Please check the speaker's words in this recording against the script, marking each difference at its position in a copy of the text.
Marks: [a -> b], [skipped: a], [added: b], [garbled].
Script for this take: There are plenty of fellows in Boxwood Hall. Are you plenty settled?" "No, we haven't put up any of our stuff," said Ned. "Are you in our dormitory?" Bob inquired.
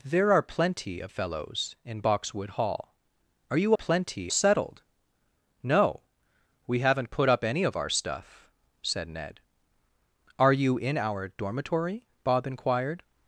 There are plenty of fellows in Boxwood Hall. Are you plenty settled?" "No, we haven't put up any of our stuff," said Ned. "Are you in our dormitory?" Bob inquired.